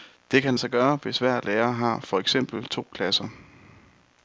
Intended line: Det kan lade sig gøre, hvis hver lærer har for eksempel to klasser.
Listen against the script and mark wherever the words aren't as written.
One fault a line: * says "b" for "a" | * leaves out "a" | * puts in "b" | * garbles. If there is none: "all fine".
* leaves out "lade"